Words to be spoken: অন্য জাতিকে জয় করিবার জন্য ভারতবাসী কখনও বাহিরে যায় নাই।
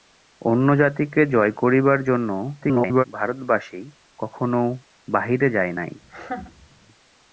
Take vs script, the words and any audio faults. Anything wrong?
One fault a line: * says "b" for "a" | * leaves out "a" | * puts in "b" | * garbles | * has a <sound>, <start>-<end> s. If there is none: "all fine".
* garbles
* has a laugh, 6.0-6.7 s